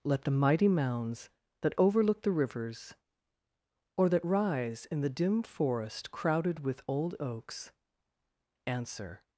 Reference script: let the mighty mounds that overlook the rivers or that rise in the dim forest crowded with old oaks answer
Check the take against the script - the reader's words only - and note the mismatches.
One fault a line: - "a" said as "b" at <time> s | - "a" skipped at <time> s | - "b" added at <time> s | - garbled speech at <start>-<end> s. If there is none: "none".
none